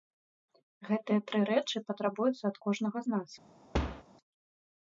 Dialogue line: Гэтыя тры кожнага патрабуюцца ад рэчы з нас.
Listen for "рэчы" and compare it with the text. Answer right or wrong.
wrong